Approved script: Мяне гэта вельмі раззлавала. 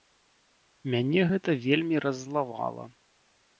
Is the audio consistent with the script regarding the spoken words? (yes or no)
yes